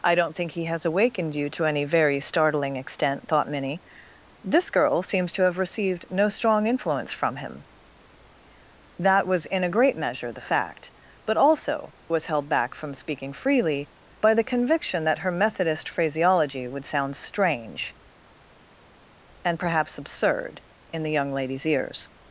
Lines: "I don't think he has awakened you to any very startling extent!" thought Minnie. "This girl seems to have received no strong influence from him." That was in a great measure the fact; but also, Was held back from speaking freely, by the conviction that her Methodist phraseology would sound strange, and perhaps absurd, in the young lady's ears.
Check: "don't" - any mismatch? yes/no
no